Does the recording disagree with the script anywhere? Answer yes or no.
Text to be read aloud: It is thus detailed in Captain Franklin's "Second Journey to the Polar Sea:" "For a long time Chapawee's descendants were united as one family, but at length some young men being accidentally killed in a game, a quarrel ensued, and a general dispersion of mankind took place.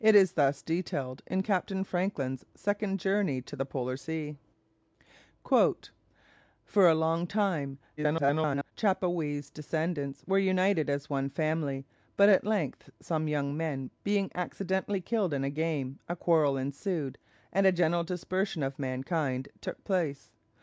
yes